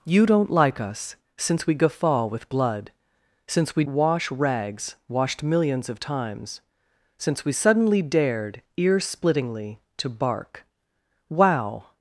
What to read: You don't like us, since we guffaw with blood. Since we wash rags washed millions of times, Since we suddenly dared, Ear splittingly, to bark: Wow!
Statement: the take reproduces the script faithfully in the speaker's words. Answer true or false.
true